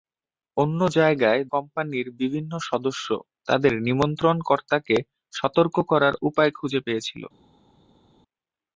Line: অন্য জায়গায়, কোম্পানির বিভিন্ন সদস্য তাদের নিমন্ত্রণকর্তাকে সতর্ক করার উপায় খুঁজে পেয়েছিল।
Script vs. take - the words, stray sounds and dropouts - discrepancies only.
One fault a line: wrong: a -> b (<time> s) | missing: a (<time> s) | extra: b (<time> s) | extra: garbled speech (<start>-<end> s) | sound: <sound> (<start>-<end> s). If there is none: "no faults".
no faults